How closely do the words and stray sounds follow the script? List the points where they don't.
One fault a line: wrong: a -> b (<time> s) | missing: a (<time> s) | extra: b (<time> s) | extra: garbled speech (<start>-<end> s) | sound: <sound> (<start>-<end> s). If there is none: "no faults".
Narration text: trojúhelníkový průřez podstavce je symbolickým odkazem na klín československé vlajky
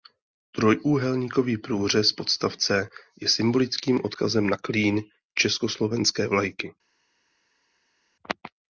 no faults